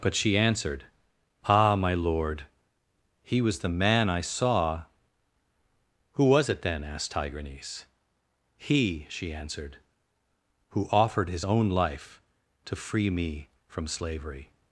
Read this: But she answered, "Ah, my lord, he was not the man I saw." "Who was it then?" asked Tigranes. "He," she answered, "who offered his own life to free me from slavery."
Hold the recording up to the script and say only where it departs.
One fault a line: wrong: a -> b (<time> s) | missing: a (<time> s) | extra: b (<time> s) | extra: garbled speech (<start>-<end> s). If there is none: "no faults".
missing: not (3.6 s)